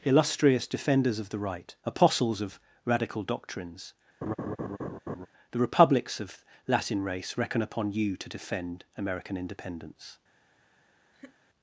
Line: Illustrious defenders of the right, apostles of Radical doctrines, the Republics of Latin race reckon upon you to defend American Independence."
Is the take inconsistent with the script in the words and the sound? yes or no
yes